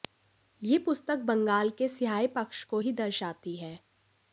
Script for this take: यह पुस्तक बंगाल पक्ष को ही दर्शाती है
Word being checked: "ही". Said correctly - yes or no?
yes